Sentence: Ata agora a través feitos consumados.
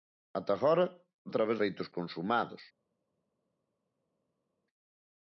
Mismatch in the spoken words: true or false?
false